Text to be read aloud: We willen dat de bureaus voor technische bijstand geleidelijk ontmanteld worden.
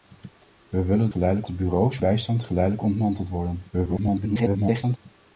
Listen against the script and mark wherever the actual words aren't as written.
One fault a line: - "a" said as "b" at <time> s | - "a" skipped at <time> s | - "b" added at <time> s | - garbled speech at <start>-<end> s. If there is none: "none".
- "dat" said as "geleidelijk" at 1.1 s
- "voor technische" skipped at 2.0 s
- garbled speech at 3.7-5.0 s